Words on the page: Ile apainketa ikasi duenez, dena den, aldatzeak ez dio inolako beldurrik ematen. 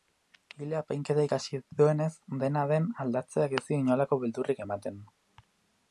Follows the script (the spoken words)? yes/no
yes